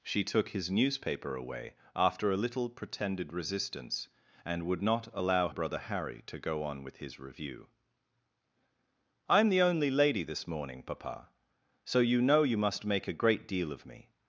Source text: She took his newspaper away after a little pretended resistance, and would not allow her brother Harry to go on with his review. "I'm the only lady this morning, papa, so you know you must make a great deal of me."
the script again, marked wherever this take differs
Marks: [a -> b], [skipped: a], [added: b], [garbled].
She took his newspaper away after a little pretended resistance, and would not allow [skipped: her] brother Harry to go on with his review. "I'm the only lady this morning, papa, so you know you must make a great deal of me."